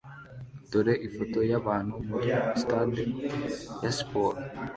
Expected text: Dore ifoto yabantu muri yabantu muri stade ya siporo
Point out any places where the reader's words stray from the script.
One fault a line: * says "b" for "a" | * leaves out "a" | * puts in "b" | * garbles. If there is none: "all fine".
* leaves out "yabantu muri"